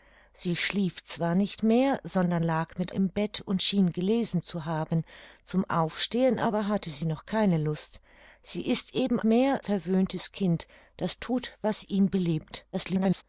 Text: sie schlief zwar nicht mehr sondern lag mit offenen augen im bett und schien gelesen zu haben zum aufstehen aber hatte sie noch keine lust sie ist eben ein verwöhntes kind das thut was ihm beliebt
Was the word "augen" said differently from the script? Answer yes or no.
yes